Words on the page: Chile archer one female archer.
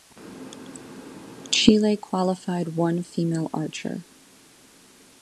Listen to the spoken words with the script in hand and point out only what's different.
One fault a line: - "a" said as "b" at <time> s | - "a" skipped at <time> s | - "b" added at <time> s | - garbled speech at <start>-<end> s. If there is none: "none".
- "archer" said as "qualified" at 1.9 s